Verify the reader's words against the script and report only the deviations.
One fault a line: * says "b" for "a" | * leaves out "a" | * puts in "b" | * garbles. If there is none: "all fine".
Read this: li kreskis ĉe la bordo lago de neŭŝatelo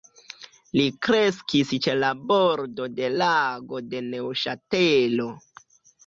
* puts in "de"